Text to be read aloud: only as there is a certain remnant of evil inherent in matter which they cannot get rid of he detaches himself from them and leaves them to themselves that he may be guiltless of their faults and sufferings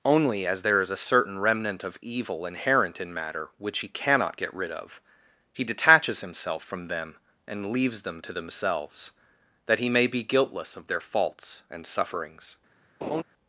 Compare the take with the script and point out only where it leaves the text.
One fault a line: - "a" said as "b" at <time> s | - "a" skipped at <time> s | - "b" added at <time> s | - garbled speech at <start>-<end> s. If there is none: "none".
- "they" said as "he" at 3.8 s